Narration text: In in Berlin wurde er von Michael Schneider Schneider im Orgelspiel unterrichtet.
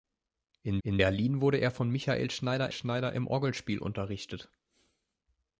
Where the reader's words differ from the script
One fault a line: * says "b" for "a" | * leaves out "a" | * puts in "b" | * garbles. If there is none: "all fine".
all fine